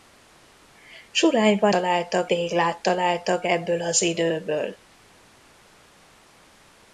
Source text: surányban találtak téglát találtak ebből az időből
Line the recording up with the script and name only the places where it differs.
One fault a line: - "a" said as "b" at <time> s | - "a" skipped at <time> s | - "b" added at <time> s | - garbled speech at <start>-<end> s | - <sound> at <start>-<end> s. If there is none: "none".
none